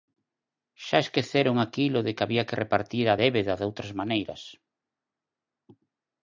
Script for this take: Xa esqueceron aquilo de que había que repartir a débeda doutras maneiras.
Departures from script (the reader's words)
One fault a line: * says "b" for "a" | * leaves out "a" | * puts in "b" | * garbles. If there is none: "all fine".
all fine